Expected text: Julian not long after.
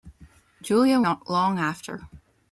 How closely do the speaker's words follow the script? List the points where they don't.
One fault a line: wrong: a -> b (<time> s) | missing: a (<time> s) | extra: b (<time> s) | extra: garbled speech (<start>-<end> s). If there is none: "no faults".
no faults